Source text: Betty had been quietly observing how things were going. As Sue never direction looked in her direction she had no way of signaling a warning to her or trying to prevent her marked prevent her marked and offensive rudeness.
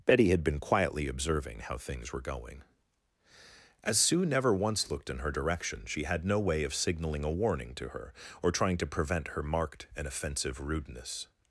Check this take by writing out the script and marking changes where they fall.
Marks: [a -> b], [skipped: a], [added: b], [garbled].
Betty had been quietly observing how things were going. As Sue never [direction -> once] looked in her direction she had no way of signaling a warning to her or trying to prevent her marked [skipped: prevent her marked] and offensive rudeness.